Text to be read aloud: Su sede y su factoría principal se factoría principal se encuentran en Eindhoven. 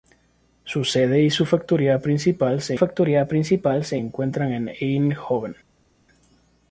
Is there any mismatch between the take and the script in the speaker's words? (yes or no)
no